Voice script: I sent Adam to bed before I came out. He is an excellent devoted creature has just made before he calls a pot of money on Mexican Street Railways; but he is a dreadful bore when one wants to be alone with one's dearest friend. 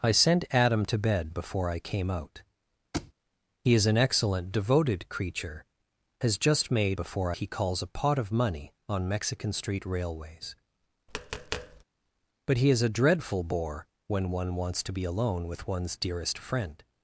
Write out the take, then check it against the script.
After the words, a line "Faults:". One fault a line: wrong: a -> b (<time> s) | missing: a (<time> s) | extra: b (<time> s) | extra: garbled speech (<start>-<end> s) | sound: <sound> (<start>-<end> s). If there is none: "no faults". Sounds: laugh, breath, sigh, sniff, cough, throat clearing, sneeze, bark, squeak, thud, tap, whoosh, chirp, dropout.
I sent Adam to bed before I came out. He is an excellent devoted creature has just made before he calls a pot of money on Mexican Street Railways; but he is a dreadful bore when one wants to be alone with one's dearest friend.
Faults:
sound: thud (2.9-3.1 s)
sound: tap (11.1-11.8 s)